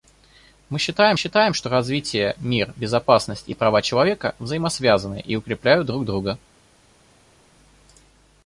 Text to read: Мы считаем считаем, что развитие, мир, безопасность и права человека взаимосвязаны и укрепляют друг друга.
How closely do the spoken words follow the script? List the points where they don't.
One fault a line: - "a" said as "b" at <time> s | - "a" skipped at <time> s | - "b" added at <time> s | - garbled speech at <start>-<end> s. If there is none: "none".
none